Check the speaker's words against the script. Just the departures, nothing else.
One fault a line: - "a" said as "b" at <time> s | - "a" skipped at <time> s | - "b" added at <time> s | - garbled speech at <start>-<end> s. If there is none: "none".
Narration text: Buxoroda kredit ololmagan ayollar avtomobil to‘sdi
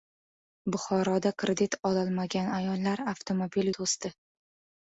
none